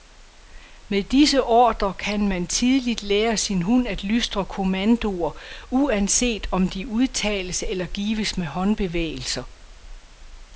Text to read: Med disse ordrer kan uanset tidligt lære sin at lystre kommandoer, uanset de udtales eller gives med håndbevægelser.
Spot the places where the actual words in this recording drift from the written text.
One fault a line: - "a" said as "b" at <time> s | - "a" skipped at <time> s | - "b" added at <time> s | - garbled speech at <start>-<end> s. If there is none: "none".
- "uanset" said as "man" at 2.3 s
- "hund" added at 3.6 s
- "om" added at 6.5 s